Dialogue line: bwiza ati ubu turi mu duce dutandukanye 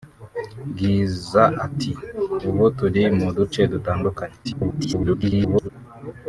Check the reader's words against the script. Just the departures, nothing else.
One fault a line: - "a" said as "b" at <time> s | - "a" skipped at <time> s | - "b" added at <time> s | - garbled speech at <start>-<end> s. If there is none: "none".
- garbled speech at 4.4-5.7 s